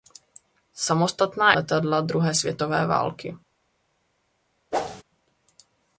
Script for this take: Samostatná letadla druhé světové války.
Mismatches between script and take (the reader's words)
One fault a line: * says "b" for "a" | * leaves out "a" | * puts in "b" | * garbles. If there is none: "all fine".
all fine